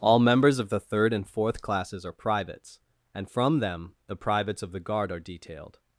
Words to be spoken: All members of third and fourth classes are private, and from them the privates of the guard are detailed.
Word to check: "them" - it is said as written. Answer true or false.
true